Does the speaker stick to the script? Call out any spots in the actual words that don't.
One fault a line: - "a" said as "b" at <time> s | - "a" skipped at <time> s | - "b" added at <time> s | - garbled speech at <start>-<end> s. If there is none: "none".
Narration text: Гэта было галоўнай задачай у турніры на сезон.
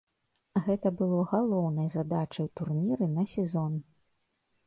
none